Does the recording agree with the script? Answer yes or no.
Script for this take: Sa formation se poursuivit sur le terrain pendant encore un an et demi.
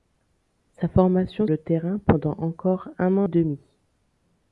no